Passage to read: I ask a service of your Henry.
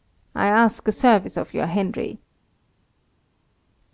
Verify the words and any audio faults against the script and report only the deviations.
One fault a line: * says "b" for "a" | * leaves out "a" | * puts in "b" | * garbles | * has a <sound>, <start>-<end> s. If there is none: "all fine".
all fine